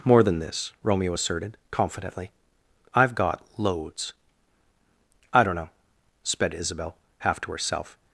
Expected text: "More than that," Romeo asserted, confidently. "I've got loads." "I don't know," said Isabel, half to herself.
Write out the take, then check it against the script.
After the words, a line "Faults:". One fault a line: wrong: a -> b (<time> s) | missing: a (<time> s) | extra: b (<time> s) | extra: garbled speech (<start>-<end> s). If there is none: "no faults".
"More than this," Romeo asserted, confidently. "I've got loads." "I don't know," sped Isabel, half to herself.
Faults:
wrong: that -> this (0.4 s)
wrong: said -> sped (6.2 s)